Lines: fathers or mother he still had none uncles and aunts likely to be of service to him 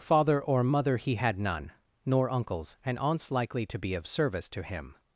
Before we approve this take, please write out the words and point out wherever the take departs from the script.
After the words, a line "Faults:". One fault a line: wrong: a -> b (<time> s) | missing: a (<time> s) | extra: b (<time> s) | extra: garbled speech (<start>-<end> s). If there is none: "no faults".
father or mother he had none nor uncles and aunts likely to be of service to him
Faults:
wrong: fathers -> father (0.0 s)
missing: still (1.1 s)
extra: nor (2.1 s)